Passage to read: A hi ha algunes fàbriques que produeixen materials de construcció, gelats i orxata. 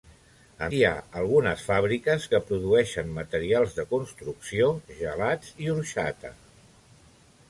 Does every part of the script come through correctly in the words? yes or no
yes